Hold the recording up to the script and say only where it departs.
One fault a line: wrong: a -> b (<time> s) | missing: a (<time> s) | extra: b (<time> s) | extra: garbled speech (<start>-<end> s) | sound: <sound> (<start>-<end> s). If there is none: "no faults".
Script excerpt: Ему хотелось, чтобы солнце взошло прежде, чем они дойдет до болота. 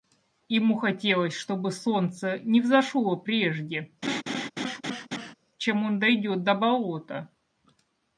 extra: не (2.4 s)
sound: laugh (4.0-5.3 s)
wrong: они -> он (5.8 s)